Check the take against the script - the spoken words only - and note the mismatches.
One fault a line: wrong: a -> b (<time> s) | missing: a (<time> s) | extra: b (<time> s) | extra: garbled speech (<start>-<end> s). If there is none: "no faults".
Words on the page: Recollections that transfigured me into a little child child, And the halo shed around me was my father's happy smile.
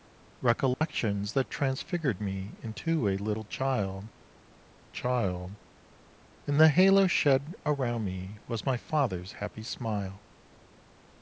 no faults